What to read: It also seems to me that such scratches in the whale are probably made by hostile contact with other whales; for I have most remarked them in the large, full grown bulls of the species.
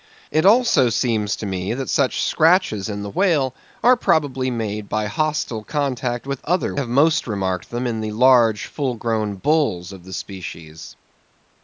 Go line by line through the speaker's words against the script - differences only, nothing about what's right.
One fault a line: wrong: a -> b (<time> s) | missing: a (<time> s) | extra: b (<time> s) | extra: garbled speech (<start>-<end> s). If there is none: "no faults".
missing: whales for I (6.8 s)